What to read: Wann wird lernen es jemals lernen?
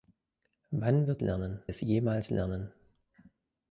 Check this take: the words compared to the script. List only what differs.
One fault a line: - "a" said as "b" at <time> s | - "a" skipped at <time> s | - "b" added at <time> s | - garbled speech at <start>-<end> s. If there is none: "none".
none